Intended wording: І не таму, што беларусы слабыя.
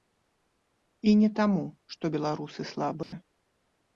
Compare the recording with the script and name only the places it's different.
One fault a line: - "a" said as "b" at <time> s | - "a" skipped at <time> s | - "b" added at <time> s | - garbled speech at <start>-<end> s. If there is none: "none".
none